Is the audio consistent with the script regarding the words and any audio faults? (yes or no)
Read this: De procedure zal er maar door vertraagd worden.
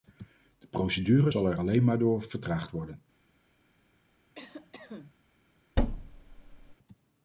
no